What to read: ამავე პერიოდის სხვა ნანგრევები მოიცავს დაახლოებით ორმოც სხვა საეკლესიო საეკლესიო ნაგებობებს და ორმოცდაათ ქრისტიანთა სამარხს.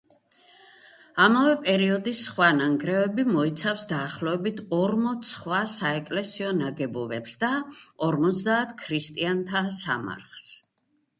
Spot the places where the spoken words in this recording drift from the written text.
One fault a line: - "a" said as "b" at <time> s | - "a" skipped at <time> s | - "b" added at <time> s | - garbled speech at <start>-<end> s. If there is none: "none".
- "საეკლესიო" skipped at 6.5 s